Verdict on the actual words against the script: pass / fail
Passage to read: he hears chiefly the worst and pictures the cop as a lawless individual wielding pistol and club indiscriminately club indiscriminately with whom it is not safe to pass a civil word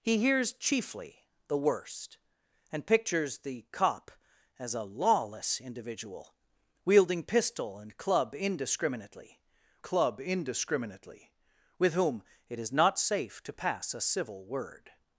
pass